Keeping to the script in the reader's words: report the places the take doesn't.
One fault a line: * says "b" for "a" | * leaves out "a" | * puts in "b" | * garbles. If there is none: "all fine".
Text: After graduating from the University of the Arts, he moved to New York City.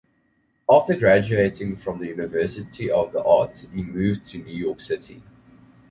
all fine